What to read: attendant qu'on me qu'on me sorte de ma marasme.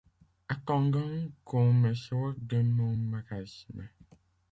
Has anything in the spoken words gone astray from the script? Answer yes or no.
yes